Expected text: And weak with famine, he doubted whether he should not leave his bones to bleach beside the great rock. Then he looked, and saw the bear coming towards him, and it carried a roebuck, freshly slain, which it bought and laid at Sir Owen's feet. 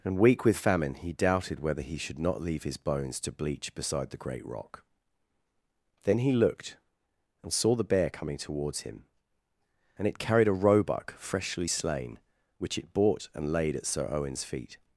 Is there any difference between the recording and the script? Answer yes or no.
no